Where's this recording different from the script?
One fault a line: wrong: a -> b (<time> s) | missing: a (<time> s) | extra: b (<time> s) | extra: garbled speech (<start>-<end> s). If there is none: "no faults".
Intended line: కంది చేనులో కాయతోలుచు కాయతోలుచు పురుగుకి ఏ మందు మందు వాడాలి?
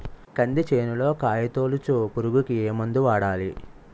missing: కాయతోలుచు (2.1 s)
missing: మందు (3.0 s)